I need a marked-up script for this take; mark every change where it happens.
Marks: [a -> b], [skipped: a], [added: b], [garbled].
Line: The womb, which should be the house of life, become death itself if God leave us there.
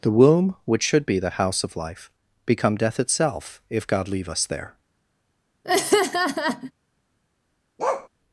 The womb, which should be the house of life, become death itself if God leave us there.